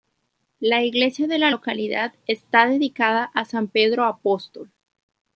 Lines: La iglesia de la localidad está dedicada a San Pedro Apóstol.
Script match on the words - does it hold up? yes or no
yes